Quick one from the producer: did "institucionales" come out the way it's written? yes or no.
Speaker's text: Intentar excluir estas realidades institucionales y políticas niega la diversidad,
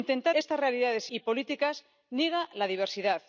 no